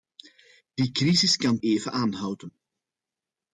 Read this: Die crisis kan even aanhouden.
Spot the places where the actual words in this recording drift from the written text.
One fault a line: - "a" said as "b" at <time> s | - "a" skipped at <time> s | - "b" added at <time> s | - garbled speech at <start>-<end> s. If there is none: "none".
none